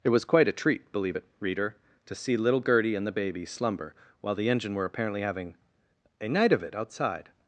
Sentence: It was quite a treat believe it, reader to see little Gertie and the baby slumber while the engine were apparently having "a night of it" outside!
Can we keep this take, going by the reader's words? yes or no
yes